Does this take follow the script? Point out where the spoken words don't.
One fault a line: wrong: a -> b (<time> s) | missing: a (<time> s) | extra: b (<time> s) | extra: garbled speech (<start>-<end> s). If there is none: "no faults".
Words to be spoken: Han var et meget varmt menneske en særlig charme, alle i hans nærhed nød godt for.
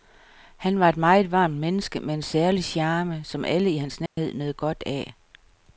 extra: med (2.0 s)
extra: som (3.2 s)
wrong: for -> af (4.8 s)